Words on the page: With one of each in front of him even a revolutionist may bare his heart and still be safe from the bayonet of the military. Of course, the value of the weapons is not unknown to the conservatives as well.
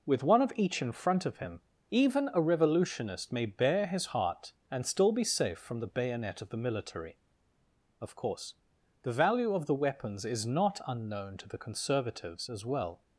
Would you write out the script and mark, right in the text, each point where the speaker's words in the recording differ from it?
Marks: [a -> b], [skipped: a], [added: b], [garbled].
With one of each in front of him even a revolutionist may bare his heart and still be safe from the bayonet of the military. Of course, the value of the weapons is not unknown to the conservatives as well.